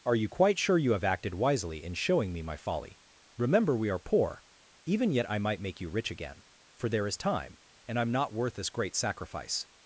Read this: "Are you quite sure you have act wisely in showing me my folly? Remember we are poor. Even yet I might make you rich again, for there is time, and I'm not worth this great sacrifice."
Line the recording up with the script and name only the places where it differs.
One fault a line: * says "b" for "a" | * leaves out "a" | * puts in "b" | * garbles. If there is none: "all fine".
* says "acted" for "act"